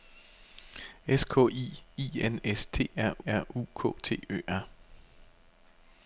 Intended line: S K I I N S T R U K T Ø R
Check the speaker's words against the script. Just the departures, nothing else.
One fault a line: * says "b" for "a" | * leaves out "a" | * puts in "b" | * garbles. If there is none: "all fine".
* puts in "R"